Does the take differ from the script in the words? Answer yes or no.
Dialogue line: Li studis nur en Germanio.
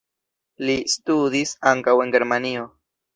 yes